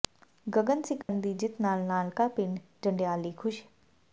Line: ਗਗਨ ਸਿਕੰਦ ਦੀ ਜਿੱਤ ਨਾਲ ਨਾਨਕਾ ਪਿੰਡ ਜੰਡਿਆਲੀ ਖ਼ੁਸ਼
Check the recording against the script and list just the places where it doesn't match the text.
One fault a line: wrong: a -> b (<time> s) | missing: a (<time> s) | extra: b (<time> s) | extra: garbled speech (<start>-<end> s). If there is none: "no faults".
no faults